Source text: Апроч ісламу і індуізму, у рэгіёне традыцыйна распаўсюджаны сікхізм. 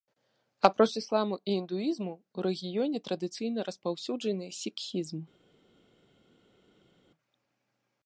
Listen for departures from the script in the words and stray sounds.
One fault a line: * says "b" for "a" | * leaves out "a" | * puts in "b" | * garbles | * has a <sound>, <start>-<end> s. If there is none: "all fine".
all fine